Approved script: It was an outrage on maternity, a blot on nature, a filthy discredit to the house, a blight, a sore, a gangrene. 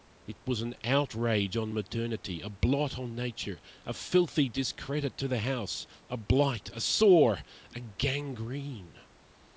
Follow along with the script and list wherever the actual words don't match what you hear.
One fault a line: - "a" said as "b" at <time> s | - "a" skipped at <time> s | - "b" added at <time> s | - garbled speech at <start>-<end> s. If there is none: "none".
none